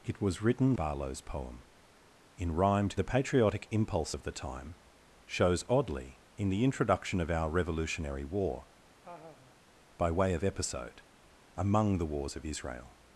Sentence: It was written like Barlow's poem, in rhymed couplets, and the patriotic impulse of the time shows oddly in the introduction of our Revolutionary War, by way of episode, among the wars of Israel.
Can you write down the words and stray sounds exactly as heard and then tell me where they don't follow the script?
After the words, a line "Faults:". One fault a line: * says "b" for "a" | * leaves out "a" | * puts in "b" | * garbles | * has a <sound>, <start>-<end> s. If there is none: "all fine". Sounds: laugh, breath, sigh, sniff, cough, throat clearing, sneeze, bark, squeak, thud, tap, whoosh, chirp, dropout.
It was written Barlow's poem, in rhymed the patriotic impulse of the time shows oddly in the introduction of our Revolutionary War, by way of episode, among the wars of Israel.
Faults:
* leaves out "like"
* leaves out "couplets and"
* has a laugh, 9.0-9.6 s